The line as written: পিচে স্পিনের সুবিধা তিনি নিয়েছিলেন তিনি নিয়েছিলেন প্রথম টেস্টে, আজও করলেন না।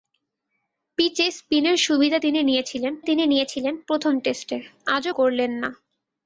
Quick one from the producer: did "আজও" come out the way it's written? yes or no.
yes